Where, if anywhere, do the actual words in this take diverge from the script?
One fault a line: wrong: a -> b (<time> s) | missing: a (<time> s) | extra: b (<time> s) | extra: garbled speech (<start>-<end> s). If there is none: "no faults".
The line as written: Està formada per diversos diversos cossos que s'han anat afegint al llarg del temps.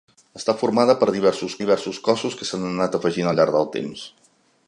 no faults